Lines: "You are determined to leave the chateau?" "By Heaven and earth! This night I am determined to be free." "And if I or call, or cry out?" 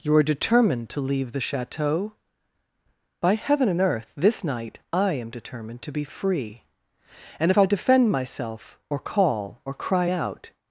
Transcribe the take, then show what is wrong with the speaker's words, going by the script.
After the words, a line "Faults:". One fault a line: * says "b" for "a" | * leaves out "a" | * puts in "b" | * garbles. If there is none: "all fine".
"You are determined to leave the chateau?" "By Heaven and earth! This night I am determined to be free." "And if I defend myself, or call, or cry out?"
Faults:
* puts in "defend myself"